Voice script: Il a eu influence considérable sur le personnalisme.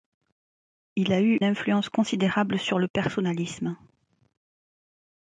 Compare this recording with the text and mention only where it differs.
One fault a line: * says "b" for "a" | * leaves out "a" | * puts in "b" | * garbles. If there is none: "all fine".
all fine